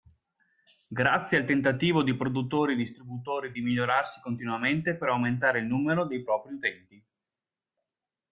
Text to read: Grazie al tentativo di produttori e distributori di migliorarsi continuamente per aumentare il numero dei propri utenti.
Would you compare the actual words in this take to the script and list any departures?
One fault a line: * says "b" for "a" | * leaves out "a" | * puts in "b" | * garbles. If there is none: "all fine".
all fine